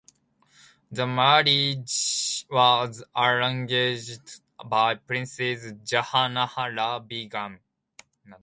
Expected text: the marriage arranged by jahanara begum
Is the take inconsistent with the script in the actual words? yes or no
yes